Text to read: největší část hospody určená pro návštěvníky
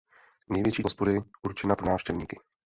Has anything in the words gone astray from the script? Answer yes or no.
yes